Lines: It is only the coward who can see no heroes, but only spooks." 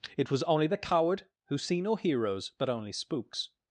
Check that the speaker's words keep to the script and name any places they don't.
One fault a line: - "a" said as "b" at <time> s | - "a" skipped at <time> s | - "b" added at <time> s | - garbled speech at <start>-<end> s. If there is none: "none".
- "is" said as "was" at 0.3 s
- "can" skipped at 1.6 s